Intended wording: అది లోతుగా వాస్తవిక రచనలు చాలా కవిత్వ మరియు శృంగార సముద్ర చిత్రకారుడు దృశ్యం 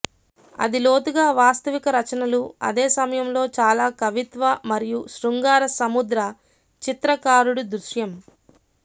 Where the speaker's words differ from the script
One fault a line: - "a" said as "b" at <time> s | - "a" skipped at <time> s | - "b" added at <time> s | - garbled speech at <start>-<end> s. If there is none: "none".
- "అదే సమయంలో" added at 2.7 s